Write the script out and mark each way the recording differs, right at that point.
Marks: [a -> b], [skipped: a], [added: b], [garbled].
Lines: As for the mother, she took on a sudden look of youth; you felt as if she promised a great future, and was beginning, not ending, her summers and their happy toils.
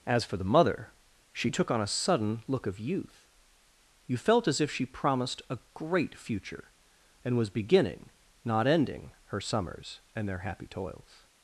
As for the mother, she took on a sudden look of youth; you felt as if she promised a great future, and was beginning, not ending, her summers and their happy toils.